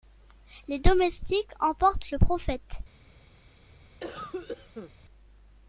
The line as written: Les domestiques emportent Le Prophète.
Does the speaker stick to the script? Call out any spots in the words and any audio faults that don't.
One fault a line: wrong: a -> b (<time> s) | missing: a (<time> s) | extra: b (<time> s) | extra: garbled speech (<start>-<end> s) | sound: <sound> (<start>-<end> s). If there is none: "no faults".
sound: cough (4.0-4.9 s)